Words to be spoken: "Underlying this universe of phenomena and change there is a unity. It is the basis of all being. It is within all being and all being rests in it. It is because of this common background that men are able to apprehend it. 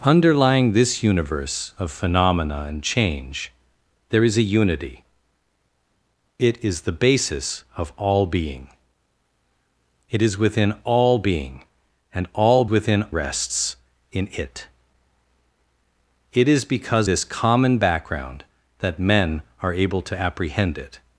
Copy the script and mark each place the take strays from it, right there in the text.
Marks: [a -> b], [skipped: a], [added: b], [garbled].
"Underlying this universe of phenomena and change there is a unity. It is the basis of all being. It is within all being and all [being -> within] rests in it. It is because [skipped: of] this common background that men are able to apprehend it.